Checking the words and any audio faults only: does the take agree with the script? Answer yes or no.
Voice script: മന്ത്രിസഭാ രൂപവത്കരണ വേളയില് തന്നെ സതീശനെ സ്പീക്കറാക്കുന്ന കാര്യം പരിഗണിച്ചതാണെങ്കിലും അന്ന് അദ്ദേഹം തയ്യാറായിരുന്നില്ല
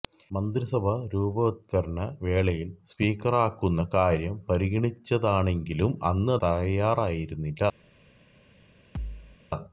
no